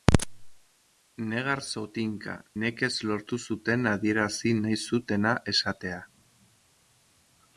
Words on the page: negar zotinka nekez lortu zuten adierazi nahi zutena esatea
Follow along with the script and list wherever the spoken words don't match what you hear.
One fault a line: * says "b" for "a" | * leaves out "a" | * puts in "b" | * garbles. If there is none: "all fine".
all fine